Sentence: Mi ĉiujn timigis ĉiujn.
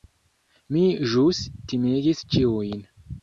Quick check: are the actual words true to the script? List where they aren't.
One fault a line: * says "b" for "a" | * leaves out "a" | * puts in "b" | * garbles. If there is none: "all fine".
* says "ĵus" for "ĉiujn"